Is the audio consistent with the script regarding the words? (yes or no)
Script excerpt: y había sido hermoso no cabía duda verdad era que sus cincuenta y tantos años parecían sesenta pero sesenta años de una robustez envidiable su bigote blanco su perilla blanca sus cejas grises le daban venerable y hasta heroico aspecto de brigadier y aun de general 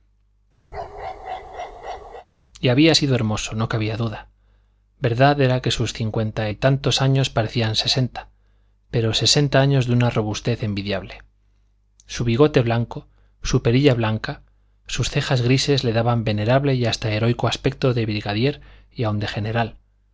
yes